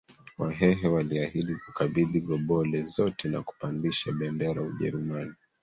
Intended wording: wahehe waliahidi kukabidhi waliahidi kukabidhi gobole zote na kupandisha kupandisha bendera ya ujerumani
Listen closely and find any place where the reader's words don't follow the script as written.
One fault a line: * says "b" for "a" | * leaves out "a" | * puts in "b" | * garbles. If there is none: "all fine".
* leaves out "waliahidi kukabidhi"
* leaves out "kupandisha"